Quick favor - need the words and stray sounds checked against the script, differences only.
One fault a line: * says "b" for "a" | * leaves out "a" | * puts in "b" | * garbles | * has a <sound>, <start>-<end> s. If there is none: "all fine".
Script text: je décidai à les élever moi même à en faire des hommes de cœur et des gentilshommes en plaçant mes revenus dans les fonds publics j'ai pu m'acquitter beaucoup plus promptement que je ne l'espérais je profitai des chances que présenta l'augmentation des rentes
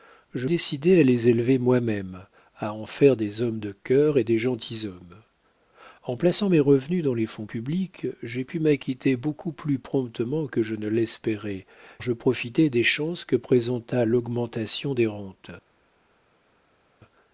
all fine